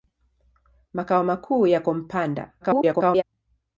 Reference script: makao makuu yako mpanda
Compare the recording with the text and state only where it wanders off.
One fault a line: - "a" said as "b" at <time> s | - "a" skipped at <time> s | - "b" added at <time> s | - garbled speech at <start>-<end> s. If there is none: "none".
- garbled speech at 2.6-3.2 s